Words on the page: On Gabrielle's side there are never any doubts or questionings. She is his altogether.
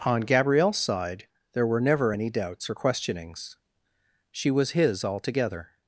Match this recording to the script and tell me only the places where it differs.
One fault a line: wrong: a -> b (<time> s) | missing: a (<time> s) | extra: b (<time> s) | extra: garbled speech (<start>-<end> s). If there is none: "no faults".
wrong: are -> were (1.7 s)
wrong: is -> was (4.5 s)